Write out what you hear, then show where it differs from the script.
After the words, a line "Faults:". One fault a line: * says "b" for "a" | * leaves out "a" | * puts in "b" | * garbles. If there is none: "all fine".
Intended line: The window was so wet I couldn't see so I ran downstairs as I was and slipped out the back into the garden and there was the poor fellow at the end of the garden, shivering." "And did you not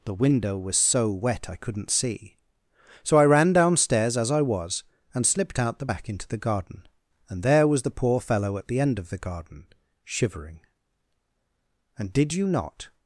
The window was so wet I couldn't see so I ran downstairs as I was and slipped out the back into the garden and there was the poor fellow at the end of the garden, shivering." "And did you not
Faults:
all fine